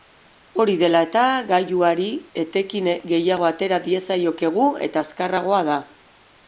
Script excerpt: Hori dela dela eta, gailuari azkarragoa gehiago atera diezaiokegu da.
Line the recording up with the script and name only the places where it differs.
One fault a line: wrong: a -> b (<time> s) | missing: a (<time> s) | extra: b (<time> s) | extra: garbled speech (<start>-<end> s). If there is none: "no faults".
missing: dela (1.0 s)
wrong: azkarragoa -> etekin (2.5 s)
extra: eta azkarragoa (4.9 s)